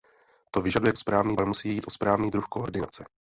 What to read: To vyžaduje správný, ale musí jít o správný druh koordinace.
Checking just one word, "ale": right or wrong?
right